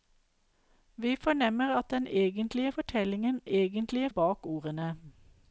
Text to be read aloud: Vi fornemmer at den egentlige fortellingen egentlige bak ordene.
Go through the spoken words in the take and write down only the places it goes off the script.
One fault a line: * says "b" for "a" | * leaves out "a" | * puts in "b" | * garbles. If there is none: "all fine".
all fine